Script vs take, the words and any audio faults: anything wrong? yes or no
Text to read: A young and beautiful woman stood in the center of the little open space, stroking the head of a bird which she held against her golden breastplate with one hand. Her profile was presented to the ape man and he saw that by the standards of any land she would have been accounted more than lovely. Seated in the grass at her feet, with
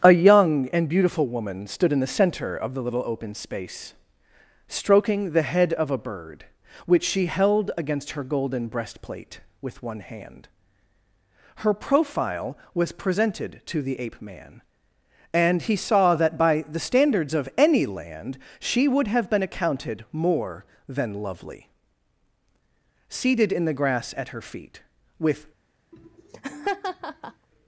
yes